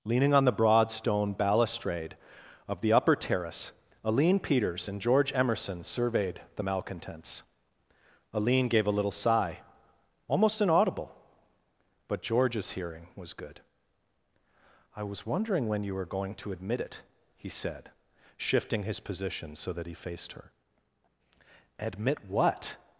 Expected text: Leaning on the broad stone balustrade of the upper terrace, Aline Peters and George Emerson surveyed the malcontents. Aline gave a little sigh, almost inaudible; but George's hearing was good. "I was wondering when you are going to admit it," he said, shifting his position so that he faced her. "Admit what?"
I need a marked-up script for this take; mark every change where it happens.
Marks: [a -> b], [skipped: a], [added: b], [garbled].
Leaning on the broad stone balustrade of the upper terrace, Aline Peters and George Emerson surveyed the malcontents. Aline gave a little sigh, almost inaudible; but George's hearing was good. "I was wondering when you [are -> were] going to admit it," he said, shifting his position so that he faced her. "Admit what?"